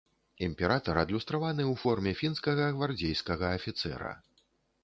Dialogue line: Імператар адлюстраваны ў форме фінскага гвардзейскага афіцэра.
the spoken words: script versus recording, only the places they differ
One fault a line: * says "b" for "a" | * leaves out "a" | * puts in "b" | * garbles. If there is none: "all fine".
all fine